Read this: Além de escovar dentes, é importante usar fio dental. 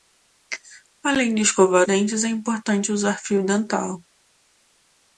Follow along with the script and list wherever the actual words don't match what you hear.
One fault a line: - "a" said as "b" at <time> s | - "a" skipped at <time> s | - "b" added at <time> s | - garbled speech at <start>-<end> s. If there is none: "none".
none